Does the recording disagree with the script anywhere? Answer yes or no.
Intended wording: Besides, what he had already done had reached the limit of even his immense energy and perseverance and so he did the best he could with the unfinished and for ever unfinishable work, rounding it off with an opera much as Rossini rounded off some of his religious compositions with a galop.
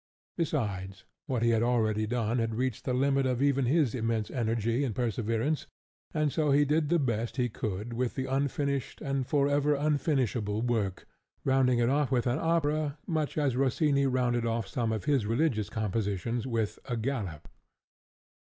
no